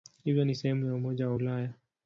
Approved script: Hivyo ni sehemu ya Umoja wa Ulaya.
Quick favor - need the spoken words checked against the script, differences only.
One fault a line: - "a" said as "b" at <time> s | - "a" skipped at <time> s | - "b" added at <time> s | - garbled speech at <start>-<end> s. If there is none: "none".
none